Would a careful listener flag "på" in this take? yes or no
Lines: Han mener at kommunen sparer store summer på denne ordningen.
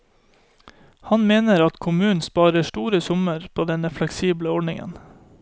no